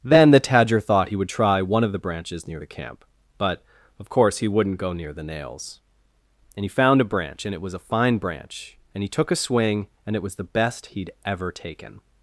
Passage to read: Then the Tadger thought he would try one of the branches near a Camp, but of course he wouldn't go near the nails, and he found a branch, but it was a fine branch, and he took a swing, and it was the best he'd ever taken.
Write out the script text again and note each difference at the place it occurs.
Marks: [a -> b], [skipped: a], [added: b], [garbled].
Then the Tadger thought he would try one of the branches near [a -> the] Camp, but of course he wouldn't go near the nails, and he found a branch, [but -> and] it was a fine branch, and he took a swing, and it was the best he'd ever taken.